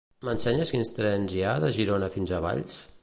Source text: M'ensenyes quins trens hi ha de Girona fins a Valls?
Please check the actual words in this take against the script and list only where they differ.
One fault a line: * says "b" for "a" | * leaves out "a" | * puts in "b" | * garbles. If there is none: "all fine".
all fine